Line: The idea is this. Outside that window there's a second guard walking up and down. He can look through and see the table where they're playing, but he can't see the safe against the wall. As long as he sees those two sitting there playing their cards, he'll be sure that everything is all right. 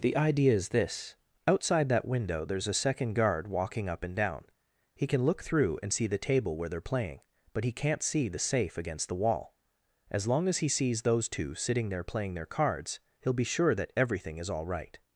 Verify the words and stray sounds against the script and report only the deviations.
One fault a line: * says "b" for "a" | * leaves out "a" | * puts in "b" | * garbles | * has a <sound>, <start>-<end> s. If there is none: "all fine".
all fine